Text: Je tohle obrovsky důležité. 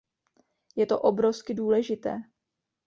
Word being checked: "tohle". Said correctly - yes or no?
no